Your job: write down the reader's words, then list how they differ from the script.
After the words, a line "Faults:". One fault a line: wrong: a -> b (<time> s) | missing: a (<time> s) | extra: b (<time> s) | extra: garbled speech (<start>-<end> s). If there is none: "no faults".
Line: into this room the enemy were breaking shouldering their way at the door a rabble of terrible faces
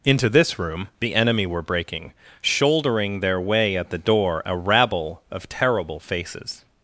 into this room the enemy were breaking shouldering their way at the door a rabble of terrible faces
Faults:
no faults